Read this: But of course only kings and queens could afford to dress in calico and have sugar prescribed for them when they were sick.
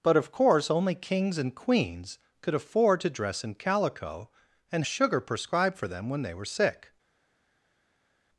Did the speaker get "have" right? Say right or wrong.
wrong